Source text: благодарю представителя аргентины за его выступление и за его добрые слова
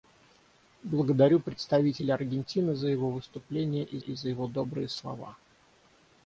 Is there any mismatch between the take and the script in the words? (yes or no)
yes